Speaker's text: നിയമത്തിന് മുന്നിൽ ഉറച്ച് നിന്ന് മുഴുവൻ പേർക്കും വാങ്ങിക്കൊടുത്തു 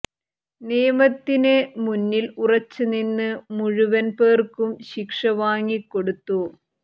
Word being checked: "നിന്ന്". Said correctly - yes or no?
yes